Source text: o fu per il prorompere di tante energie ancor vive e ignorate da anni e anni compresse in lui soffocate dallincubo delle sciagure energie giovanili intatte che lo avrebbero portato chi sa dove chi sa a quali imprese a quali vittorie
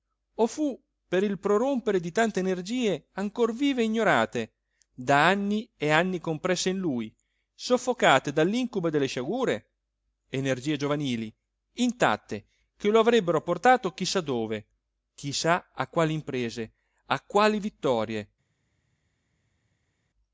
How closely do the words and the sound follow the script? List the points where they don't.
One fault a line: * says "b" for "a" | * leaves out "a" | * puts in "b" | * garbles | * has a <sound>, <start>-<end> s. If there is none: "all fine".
all fine